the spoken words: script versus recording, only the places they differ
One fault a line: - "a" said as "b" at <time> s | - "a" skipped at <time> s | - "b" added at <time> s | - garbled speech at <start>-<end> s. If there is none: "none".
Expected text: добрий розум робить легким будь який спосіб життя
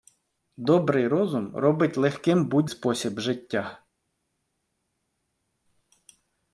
- "який" skipped at 2.7 s